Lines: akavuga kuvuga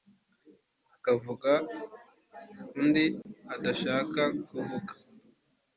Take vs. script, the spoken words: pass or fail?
fail